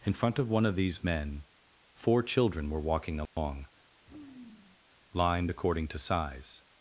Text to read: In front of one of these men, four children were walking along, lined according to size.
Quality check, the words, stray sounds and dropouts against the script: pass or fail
fail